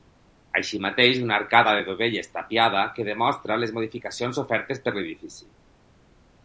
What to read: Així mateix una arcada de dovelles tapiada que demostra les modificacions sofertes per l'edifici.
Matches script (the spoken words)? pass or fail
pass